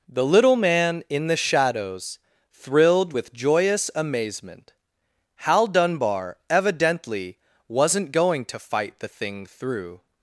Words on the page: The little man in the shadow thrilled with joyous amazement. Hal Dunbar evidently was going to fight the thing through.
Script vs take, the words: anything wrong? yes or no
yes